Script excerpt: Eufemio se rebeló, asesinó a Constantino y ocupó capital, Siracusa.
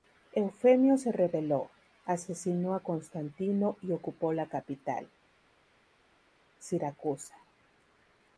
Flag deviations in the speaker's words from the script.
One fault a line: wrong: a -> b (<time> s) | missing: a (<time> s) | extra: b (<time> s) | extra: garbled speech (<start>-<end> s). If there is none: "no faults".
extra: la (4.3 s)